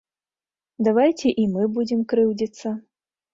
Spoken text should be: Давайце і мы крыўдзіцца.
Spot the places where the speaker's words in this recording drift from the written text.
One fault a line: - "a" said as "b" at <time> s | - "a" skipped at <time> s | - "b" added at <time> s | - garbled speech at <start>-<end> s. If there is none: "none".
- "будзем" added at 1.8 s